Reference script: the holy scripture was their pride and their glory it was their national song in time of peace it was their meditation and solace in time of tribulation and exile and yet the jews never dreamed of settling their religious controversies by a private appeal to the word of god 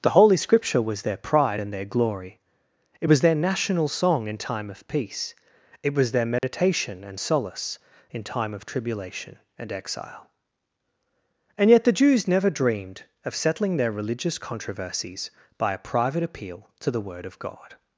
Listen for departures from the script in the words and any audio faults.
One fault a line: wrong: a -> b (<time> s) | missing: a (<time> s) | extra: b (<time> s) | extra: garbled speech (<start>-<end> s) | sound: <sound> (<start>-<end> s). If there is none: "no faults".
sound: dropout (6.4-6.4 s)